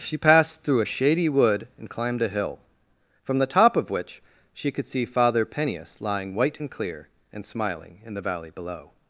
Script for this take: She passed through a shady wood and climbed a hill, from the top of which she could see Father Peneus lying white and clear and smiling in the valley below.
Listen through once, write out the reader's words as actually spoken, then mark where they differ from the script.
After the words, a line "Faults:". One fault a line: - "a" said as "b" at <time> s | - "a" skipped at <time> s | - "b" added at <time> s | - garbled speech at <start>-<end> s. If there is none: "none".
She passed through a shady wood and climbed a hill, from the top of which she could see Father Peneus lying white and clear and smiling in the valley below.
Faults:
none